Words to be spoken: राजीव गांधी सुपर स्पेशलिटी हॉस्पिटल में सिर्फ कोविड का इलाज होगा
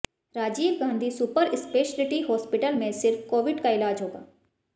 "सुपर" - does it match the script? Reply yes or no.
yes